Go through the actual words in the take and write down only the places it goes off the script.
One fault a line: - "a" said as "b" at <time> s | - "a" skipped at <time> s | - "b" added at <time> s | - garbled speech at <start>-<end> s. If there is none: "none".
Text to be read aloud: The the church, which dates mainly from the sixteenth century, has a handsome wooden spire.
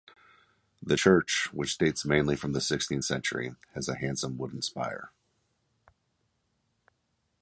- "the" skipped at 1.0 s